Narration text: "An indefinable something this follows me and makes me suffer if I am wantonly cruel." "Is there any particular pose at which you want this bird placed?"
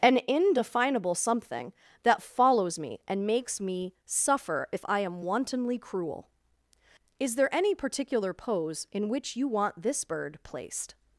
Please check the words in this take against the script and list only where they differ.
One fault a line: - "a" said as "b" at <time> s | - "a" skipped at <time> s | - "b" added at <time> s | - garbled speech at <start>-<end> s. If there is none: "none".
- "this" said as "that" at 2.0 s
- "at" said as "in" at 8.9 s